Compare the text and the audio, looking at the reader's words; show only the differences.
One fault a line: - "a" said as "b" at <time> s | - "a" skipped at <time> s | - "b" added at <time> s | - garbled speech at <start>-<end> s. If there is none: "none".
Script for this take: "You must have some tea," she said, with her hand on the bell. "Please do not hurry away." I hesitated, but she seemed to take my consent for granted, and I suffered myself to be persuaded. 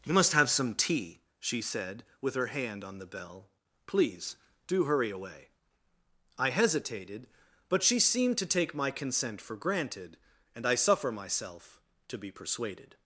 - "not" skipped at 4.8 s
- "suffered" said as "suffer" at 10.8 s